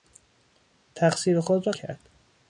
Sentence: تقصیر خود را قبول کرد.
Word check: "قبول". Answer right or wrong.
wrong